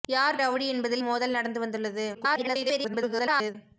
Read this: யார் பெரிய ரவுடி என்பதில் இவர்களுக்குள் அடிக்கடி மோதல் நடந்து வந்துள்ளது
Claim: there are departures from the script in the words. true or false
true